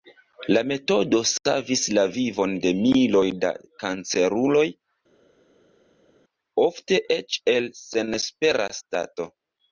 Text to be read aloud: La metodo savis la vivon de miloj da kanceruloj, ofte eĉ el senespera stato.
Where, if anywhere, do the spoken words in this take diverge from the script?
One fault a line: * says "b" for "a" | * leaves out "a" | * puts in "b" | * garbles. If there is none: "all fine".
all fine